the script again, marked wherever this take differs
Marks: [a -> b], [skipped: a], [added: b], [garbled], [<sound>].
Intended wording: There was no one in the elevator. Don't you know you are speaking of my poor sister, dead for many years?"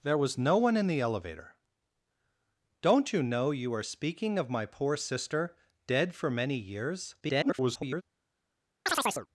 There was no one in the elevator. Don't you know you are speaking of my poor sister, dead for many years?" [garbled] [chirp]